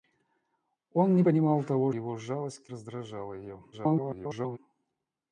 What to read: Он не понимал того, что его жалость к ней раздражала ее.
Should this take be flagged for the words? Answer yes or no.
yes